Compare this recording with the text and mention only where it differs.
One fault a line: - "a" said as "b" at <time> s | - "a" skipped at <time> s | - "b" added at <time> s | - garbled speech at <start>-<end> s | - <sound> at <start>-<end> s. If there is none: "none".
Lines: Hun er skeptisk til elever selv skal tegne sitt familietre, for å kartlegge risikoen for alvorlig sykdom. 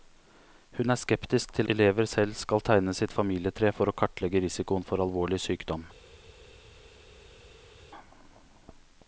none